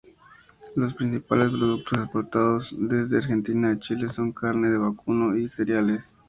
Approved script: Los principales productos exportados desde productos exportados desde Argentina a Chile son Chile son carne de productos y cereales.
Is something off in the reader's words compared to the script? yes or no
yes